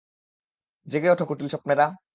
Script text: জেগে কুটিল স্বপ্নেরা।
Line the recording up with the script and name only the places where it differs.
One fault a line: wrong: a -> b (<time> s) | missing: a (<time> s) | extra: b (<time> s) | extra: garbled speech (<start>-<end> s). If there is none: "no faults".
extra: ওঠো (1.1 s)